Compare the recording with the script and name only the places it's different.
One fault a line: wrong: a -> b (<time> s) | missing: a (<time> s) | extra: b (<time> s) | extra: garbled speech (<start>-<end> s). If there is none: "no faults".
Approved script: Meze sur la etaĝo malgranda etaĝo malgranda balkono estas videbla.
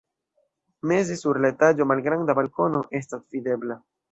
missing: etaĝo malgranda (2.4 s)